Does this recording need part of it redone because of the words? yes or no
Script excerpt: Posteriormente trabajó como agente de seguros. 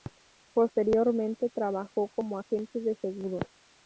no